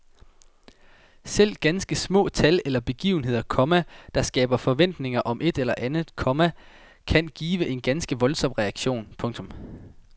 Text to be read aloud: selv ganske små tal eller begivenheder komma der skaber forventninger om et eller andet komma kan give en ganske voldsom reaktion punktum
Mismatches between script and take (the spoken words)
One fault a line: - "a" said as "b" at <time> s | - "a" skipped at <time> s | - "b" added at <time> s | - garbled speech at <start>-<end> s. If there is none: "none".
none